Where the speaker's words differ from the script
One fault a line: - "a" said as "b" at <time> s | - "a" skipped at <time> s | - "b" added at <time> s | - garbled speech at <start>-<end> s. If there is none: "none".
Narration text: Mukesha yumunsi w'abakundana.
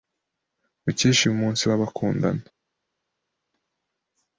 none